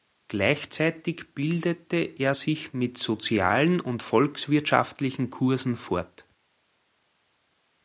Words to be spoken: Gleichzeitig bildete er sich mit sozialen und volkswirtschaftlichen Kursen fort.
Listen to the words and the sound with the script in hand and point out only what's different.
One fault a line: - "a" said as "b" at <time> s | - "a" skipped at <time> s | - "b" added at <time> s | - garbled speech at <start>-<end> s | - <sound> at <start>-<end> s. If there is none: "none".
none